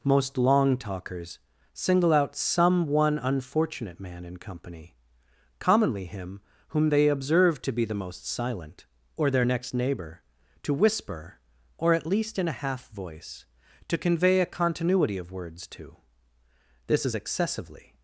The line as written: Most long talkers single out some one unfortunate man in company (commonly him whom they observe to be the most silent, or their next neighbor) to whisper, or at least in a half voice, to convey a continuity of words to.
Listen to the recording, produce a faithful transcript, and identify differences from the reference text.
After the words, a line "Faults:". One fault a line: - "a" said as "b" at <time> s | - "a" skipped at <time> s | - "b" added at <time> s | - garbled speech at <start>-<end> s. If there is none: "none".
Most long talkers single out some one unfortunate man in company (commonly him whom they observe to be the most silent, or their next neighbor) to whisper, or at least in a half voice, to convey a continuity of words to. This is excessively
Faults:
- "This is excessively" added at 16.9 s